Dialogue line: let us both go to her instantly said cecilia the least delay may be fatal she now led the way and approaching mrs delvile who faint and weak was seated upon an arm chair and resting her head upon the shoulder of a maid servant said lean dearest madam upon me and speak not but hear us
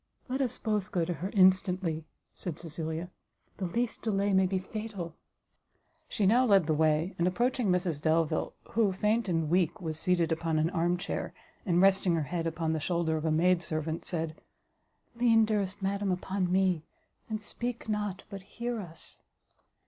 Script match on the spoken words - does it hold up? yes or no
yes